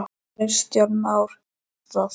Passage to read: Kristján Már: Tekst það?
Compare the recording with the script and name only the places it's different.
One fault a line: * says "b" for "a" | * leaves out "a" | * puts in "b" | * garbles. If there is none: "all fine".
* leaves out "Tekst"